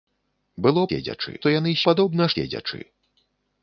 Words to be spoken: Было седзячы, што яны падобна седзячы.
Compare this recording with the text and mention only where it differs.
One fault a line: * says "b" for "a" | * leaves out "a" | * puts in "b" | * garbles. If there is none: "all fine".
all fine